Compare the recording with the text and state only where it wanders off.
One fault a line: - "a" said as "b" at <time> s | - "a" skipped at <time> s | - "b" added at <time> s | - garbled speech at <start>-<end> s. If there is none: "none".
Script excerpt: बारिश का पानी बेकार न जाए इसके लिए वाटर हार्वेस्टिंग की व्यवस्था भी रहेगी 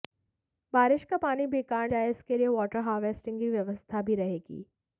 - "न" skipped at 1.9 s